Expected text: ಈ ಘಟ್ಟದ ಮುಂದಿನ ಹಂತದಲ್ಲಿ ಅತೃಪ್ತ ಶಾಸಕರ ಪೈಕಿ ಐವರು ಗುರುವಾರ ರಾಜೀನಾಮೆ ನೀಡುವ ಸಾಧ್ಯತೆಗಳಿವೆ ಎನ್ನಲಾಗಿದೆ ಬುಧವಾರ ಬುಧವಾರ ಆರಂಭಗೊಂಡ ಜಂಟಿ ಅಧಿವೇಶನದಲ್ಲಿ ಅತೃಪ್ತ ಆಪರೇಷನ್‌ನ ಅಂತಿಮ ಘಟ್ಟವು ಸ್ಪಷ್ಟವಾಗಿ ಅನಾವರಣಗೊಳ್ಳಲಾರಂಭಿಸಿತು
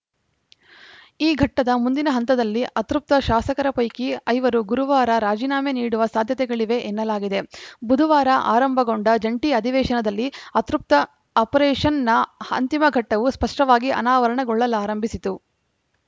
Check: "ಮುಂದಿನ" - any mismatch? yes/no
no